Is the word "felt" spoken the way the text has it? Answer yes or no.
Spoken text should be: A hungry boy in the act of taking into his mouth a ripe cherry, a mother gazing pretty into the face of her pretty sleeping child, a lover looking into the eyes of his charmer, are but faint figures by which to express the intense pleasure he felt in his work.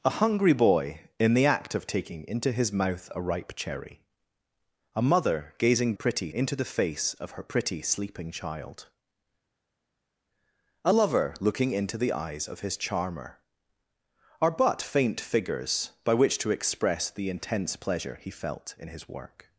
yes